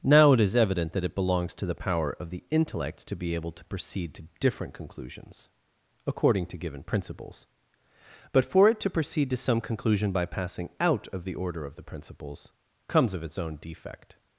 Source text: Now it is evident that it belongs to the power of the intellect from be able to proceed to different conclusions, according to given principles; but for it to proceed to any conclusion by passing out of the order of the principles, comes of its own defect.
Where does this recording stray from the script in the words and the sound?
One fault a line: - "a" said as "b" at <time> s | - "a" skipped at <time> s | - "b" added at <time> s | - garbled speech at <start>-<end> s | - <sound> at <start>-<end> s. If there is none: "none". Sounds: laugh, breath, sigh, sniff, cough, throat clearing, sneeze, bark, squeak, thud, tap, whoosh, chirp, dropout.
- "from" said as "to" at 3.0 s
- "any" said as "some" at 9.4 s